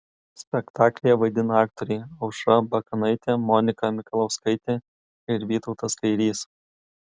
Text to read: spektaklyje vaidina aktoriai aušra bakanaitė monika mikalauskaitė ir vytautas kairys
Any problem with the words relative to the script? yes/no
no